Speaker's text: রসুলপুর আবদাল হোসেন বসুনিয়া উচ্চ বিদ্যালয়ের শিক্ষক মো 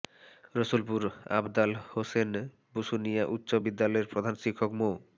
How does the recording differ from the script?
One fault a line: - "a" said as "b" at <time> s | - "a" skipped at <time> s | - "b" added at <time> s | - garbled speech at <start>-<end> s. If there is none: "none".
- "প্রধান" added at 4.1 s